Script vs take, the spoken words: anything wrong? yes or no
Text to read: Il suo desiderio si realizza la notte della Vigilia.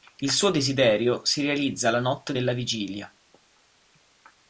no